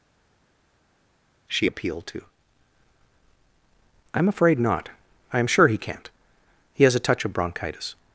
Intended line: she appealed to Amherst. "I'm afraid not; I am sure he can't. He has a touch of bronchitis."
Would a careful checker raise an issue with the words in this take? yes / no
yes